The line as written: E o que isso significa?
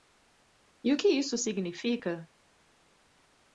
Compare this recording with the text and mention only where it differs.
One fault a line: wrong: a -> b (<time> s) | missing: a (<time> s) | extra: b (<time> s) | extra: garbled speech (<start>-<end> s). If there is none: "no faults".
no faults